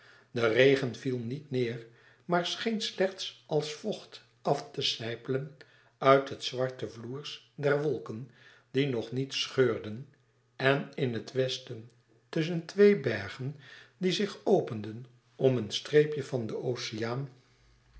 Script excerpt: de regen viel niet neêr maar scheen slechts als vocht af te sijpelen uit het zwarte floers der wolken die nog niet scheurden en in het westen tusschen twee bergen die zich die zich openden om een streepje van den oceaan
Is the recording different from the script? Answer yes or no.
yes